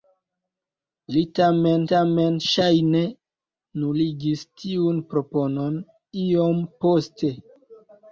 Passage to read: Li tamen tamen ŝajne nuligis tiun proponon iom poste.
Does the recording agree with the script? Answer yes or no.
yes